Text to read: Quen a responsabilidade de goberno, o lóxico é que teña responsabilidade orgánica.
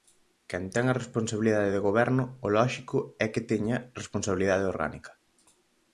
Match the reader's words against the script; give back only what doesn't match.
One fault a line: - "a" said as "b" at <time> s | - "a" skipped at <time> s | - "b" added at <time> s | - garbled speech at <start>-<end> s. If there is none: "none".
- "ten" added at 0.7 s